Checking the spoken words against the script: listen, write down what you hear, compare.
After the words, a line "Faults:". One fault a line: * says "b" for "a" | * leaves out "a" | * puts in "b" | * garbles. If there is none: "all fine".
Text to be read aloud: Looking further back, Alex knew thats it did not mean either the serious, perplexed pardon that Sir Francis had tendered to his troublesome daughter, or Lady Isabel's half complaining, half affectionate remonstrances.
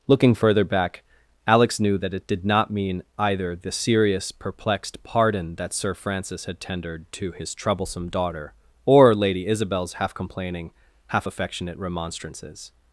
Looking further back, Alex knew that it did not mean either the serious, perplexed pardon that Sir Francis had tendered to his troublesome daughter, or Lady Isabel's half complaining, half affectionate remonstrances.
Faults:
* says "that" for "thats"